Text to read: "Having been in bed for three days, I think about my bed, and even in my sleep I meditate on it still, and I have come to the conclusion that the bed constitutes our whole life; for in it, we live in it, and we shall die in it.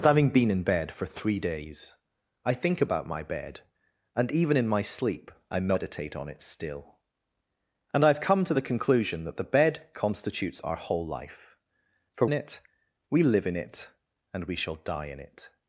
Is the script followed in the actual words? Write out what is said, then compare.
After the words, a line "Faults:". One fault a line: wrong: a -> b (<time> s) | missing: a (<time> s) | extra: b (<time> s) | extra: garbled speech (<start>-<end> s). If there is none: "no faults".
"Having been in bed for three days, I think about my bed, and even in my sleep I meditate on it still, and I have come to the conclusion that the bed constitutes our whole life; for in it, we live in it, and we shall die in it.
Faults:
no faults